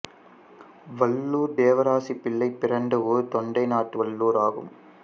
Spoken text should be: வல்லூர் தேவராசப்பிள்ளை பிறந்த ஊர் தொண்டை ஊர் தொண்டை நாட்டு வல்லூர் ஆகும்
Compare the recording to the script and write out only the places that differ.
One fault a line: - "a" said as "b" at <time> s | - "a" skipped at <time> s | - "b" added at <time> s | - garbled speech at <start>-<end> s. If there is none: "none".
- "ஊர் தொண்டை" skipped at 3.7 s